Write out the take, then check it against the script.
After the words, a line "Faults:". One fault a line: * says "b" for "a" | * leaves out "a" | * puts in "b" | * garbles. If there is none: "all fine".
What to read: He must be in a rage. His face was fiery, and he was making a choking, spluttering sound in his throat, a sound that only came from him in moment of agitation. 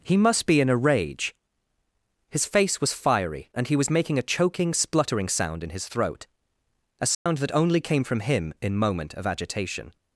He must be in a rage. His face was fiery, and he was making a choking, spluttering sound in his throat, a sound that only came from him in moment of agitation.
Faults:
all fine